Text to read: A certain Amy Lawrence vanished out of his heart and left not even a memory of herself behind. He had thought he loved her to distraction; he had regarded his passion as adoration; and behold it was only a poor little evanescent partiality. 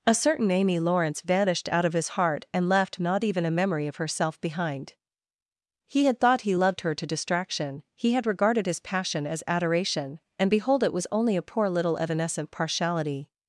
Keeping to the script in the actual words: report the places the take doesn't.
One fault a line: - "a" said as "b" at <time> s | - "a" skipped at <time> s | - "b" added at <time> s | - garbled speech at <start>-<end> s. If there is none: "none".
none